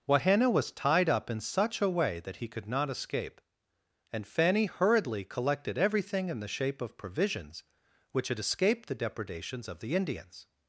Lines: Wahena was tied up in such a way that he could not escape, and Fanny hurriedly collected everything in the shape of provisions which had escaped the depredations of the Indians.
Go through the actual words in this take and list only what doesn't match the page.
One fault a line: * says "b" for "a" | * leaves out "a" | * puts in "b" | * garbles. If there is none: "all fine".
all fine